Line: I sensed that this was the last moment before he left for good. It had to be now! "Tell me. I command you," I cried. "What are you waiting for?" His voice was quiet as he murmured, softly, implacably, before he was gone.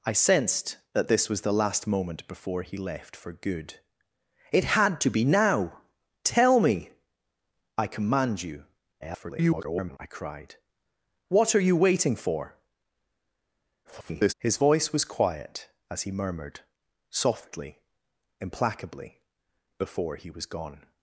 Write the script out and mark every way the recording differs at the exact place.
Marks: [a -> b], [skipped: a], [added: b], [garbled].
I sensed that this was the last moment before he left for good. It had to be now! "Tell me. I command you," [garbled] I cried. "What are you waiting for?" [garbled] His voice was quiet as he murmured, softly, implacably, before he was gone.